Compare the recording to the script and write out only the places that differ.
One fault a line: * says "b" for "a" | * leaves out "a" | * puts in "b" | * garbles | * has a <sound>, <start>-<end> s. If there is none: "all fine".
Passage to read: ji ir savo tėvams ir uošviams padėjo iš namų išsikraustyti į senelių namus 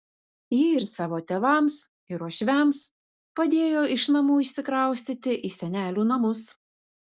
all fine